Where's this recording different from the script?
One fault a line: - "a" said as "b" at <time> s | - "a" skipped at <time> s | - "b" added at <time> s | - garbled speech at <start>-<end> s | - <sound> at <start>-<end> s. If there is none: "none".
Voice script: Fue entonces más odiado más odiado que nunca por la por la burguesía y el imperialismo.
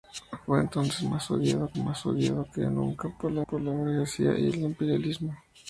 none